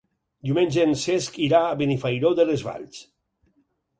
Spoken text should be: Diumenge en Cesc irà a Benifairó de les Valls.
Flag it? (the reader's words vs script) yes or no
no